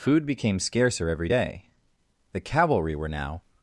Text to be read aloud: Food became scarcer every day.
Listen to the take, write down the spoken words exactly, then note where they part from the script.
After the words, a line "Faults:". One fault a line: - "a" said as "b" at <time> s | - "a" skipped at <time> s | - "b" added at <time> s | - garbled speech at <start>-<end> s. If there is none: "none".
Food became scarcer every day. The cavalry were now
Faults:
- "The cavalry were now" added at 2.3 s